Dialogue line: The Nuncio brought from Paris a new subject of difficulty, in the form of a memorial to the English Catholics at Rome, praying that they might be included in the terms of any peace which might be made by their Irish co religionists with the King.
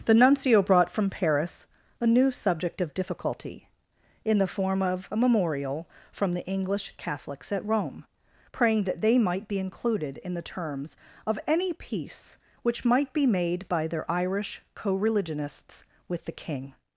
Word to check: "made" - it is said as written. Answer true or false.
true